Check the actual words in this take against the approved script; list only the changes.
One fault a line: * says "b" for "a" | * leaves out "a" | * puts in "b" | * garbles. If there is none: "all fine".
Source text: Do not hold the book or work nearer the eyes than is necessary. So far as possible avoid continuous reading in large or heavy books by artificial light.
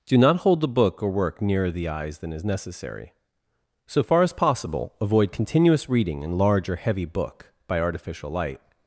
* says "book" for "books"